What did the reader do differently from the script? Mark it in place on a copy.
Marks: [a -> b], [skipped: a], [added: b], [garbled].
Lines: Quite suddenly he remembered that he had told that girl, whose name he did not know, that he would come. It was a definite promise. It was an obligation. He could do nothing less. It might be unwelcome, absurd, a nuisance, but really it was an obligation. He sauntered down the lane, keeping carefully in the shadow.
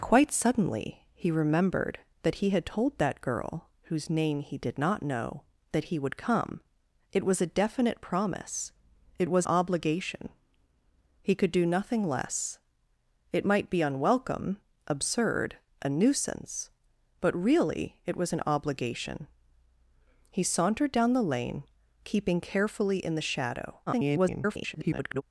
Quite suddenly he remembered that he had told that girl, whose name he did not know, that he would come. It was a definite promise. It was [skipped: an] obligation. He could do nothing less. It might be unwelcome, absurd, a nuisance, but really it was an obligation. He sauntered down the lane, keeping carefully in the shadow. [garbled]